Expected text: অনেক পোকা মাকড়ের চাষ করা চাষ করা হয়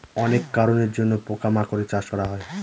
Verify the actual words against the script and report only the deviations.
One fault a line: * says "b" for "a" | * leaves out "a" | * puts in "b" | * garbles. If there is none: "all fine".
* puts in "কারনের জন্য"
* leaves out "চাষ করা"